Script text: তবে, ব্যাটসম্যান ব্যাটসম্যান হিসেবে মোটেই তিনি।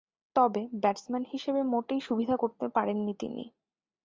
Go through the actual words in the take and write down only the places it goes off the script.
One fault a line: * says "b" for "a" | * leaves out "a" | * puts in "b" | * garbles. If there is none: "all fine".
* leaves out "ব্যাটসম্যান"
* puts in "সুবিধা করতে পারেননি"